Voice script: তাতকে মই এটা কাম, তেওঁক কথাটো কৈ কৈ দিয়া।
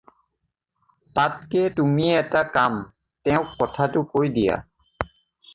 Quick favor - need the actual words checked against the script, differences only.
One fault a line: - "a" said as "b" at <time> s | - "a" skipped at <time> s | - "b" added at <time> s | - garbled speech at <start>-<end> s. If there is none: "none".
- "মই" said as "তুমি" at 1.8 s
- "কৈ" skipped at 4.3 s